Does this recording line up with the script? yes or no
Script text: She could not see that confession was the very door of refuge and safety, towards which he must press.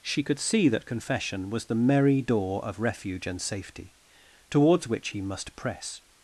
no